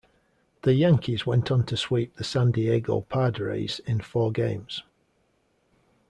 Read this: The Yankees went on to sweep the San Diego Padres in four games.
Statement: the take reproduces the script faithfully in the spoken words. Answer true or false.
true